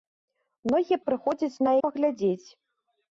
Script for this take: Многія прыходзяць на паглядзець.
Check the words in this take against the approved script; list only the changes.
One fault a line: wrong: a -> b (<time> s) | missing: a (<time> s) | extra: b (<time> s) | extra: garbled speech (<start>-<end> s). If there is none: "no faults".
no faults